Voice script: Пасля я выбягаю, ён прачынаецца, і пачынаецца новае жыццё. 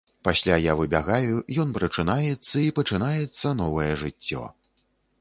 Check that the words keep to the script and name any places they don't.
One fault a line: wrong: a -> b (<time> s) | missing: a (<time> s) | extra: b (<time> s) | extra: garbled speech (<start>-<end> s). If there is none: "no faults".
no faults